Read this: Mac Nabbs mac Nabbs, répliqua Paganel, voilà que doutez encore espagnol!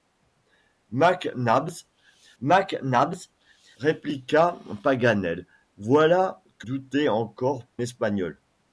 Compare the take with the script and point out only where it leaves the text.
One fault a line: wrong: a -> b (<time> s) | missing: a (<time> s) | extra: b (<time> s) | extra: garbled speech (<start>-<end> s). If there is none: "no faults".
no faults